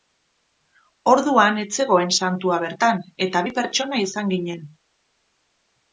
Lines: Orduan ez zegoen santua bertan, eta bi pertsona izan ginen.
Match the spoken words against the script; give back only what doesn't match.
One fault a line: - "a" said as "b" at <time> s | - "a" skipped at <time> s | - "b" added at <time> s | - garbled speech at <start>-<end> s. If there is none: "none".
none